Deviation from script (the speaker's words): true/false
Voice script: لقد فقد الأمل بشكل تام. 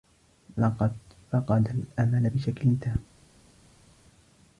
false